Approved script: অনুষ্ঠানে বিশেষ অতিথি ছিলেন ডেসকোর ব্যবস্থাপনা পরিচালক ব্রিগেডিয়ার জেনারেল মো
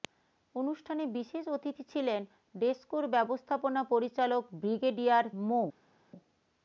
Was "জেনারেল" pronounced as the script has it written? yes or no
no